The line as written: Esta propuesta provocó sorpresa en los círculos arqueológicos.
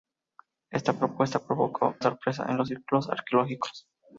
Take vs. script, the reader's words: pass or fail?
pass